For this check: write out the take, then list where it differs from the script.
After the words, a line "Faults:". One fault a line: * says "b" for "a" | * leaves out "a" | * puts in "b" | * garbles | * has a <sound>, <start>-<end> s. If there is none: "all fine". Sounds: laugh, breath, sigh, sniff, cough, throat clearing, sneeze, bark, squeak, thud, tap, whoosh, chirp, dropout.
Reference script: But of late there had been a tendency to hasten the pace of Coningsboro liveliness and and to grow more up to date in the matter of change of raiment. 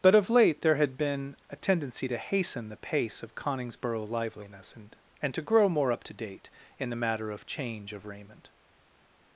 But of late there had been a tendency to hasten the pace of Coningsboro liveliness and and to grow more up to date in the matter of change of raiment.
Faults:
all fine